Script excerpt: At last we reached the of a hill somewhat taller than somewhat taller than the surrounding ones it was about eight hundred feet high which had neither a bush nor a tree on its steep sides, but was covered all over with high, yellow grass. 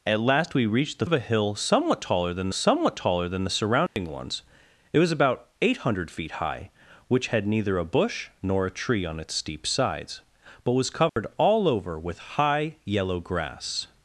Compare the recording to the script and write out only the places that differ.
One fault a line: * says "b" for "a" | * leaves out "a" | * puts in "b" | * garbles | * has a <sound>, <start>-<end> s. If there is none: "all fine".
* has a dropout, 3.9-4.0 s
* has a dropout, 11.1-11.2 s